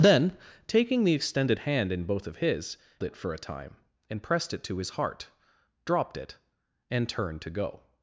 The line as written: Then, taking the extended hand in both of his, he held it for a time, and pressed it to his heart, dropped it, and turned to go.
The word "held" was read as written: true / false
false